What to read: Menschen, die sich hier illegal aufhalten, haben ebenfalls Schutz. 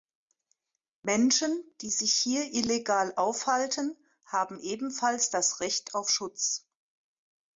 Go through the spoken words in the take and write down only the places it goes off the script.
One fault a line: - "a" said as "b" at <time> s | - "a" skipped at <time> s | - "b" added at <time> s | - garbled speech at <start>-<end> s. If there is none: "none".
- "das Recht auf" added at 5.3 s